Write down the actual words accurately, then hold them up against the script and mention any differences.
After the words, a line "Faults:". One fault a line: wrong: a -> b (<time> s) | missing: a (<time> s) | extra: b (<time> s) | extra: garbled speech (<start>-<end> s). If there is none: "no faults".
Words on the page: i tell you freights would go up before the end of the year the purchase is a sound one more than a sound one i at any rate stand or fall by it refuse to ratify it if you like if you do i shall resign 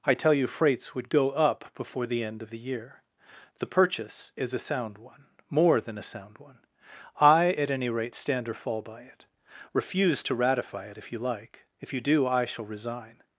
i tell you freights would go up before the end of the year the purchase is a sound one more than a sound one i at any rate stand or fall by it refuse to ratify it if you like if you do i shall resign
Faults:
no faults